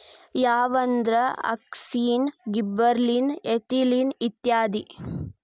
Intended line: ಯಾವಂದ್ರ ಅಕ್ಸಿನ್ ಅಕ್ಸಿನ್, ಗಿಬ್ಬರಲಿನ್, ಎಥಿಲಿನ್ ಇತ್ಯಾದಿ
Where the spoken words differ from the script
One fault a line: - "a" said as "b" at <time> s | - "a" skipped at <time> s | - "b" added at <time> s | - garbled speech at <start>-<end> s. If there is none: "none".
- "ಅಕ್ಸಿನ್" skipped at 2.3 s